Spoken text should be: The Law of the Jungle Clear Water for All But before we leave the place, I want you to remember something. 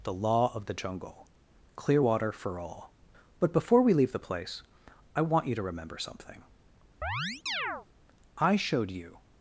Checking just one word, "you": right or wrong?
right